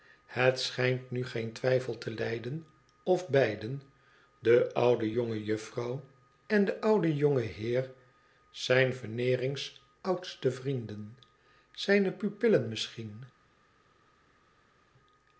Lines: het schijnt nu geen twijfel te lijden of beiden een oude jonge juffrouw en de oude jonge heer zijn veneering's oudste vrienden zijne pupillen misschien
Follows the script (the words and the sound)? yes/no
no